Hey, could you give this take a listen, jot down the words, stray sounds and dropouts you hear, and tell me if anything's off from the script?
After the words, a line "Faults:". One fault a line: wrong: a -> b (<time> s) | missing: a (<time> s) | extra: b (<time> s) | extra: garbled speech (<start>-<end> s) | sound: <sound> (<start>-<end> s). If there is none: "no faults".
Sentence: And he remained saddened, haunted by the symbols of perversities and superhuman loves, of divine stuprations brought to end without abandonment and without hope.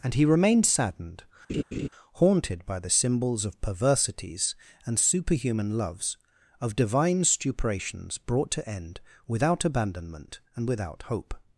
And he remained saddened, haunted by the symbols of perversities and superhuman loves, of divine stuprations brought to end without abandonment and without hope.
Faults:
sound: laugh (1.5-1.9 s)